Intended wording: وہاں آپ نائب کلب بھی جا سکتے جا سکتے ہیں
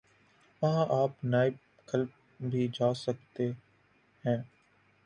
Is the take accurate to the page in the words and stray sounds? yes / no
no